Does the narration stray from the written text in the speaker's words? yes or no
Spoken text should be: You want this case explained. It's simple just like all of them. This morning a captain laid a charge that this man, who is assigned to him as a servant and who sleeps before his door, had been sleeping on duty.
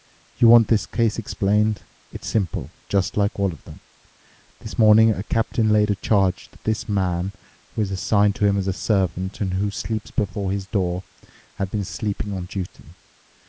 no